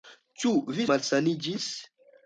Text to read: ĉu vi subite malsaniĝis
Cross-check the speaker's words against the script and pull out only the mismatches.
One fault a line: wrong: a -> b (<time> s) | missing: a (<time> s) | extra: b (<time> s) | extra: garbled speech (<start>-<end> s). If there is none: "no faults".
missing: subite (0.9 s)